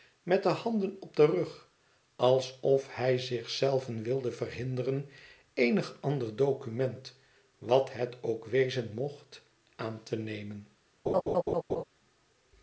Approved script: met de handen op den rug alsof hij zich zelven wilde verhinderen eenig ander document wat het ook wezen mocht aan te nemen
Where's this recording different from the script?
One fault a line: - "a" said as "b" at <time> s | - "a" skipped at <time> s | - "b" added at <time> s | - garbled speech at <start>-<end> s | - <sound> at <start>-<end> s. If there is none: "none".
- laugh at 11.1-11.8 s